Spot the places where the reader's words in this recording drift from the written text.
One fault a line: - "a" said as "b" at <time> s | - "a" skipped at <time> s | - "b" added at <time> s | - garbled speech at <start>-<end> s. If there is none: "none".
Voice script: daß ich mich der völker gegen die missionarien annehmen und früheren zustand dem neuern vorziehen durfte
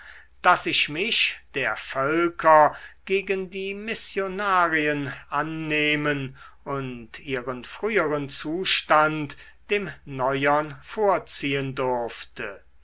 - "ihren" added at 7.2 s